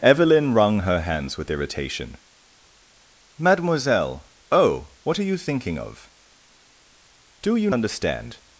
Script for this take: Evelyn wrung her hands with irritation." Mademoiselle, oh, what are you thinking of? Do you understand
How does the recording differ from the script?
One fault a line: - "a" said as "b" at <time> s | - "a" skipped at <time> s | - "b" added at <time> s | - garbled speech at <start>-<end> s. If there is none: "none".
none